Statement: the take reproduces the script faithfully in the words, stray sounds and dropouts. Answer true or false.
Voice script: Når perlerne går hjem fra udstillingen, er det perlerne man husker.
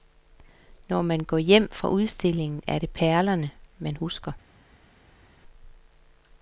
false